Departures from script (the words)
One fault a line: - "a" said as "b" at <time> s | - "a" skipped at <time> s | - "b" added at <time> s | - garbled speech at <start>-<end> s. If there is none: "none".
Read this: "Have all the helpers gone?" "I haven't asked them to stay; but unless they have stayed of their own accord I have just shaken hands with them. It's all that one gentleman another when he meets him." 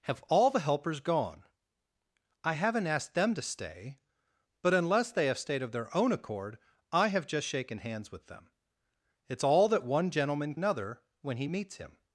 none